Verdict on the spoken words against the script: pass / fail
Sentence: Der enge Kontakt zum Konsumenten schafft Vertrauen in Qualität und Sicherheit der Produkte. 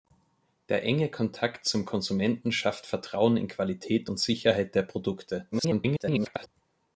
fail